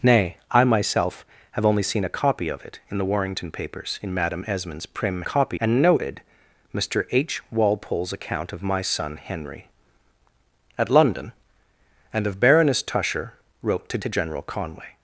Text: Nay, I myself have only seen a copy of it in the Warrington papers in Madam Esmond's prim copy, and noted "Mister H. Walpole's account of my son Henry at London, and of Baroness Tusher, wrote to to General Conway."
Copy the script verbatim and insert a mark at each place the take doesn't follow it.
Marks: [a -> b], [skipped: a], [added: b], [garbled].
Nay, I myself have only seen a copy of it in the Warrington papers in Madam Esmond's prim copy, and noted "Mister H. Walpole's account of my son Henry at London, and of Baroness Tusher, wrote to to General Conway."